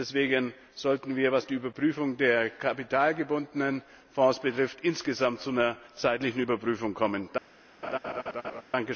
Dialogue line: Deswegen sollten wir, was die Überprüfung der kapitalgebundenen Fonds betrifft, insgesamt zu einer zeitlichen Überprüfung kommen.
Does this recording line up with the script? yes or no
yes